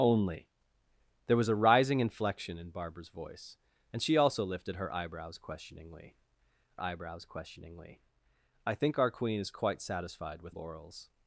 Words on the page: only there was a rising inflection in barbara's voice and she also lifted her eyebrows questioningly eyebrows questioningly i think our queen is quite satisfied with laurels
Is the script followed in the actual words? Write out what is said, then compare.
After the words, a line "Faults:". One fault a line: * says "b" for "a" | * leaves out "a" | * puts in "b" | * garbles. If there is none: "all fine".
only there was a rising inflection in barbara's voice and she also lifted her eyebrows questioningly eyebrows questioningly i think our queen is quite satisfied with laurels
Faults:
all fine